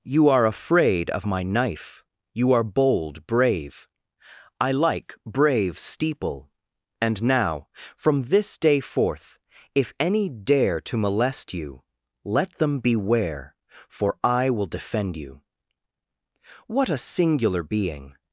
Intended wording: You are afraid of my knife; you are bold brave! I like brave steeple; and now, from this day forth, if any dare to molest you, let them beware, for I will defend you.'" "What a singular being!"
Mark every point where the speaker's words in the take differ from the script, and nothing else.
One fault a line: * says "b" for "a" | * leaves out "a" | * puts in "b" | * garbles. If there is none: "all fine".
all fine